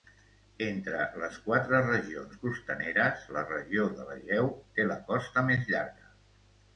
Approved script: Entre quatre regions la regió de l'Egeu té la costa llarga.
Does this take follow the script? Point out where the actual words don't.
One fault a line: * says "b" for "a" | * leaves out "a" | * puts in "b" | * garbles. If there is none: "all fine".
* puts in "les"
* puts in "costaneres"
* puts in "més"